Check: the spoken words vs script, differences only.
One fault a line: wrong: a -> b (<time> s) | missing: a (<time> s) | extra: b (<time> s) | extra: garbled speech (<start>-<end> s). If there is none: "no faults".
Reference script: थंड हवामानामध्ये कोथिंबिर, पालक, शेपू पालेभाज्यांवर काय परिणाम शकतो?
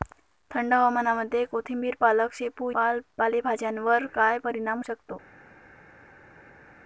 no faults